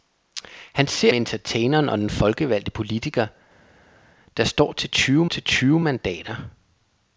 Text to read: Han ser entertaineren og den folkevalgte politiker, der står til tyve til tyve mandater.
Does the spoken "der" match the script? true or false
true